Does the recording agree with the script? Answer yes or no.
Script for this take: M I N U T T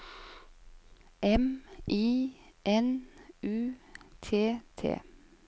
yes